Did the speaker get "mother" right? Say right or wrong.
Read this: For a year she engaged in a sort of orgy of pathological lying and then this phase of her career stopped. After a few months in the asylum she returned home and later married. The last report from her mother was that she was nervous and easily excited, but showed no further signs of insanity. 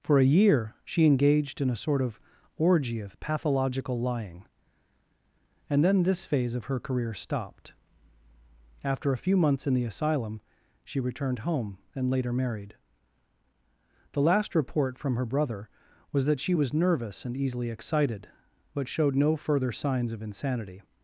wrong